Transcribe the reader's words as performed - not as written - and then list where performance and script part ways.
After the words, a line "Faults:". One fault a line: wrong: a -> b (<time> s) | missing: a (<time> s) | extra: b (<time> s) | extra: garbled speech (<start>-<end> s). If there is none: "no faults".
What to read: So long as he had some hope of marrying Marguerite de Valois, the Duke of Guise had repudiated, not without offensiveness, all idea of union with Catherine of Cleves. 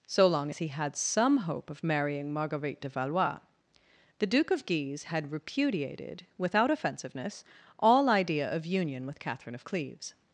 So long as he had some hope of marrying Marguerite de Valois, the Duke of Guise had repudiated, without offensiveness, all idea of union with Catherine of Cleves.
Faults:
missing: not (6.2 s)